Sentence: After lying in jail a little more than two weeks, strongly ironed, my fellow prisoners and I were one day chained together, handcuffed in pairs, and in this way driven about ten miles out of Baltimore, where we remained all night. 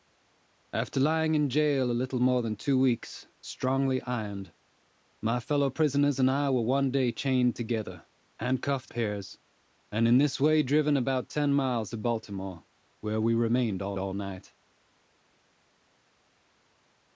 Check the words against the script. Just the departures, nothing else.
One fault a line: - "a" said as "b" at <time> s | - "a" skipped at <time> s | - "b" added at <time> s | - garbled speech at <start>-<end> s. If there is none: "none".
- "in" skipped at 8.9 s
- "out" skipped at 11.9 s
- "all" added at 14.0 s